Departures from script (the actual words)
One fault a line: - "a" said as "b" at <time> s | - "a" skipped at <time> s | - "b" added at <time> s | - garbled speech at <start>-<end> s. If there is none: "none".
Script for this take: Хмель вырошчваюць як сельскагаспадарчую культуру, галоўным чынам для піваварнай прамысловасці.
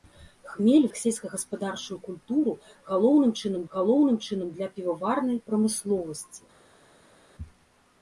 - "вырошчваюць" skipped at 0.8 s
- "галоўным чынам" added at 3.8 s